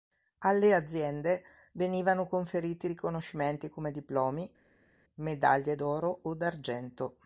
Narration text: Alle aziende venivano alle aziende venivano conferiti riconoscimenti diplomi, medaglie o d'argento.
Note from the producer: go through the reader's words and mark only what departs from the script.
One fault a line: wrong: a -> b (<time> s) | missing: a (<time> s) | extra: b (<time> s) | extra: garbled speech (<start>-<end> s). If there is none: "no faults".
missing: alle aziende venivano (2.2 s)
extra: come (3.7 s)
extra: d'oro (5.7 s)